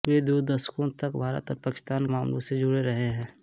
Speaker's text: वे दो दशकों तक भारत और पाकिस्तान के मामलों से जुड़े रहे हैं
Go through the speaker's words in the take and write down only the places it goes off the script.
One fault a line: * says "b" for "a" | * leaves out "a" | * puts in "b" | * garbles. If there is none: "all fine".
* leaves out "के"